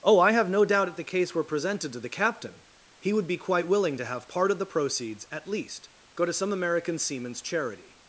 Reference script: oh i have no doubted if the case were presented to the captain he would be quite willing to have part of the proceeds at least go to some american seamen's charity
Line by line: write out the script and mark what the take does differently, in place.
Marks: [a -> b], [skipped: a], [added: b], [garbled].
oh i have no [doubted -> doubt] if the case were presented to the captain he would be quite willing to have part of the proceeds at least go to some american seamen's charity